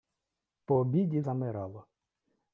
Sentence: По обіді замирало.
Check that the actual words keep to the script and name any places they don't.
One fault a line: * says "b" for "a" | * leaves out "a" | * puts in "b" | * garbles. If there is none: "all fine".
all fine